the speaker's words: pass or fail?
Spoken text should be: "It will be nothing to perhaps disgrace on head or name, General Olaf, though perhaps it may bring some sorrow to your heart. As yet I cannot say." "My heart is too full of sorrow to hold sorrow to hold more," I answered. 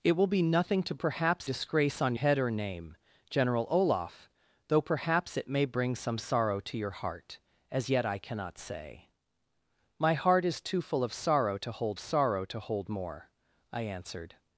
pass